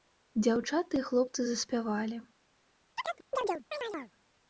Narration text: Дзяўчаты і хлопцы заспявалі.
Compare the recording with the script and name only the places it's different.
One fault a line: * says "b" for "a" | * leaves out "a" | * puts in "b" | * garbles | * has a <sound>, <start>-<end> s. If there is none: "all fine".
* has a chirp, 3.0-4.1 s